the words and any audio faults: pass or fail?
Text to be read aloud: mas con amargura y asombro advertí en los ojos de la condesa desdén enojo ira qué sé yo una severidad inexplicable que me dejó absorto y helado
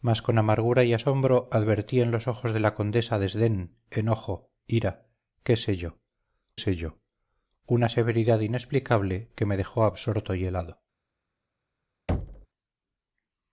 fail